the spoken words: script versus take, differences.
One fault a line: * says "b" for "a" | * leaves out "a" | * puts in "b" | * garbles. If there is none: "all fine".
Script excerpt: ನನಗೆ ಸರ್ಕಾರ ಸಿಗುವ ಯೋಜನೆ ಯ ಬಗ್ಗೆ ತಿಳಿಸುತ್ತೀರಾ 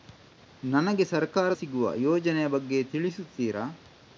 all fine